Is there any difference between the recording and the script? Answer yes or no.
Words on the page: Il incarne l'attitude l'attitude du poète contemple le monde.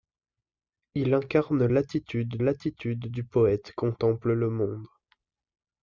no